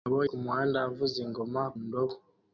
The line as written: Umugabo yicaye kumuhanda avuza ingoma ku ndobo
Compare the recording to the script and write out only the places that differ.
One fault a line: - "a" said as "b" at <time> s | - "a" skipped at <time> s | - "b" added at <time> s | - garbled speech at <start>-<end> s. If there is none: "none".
- "yicaye" skipped at 0.2 s
- "ku" skipped at 1.6 s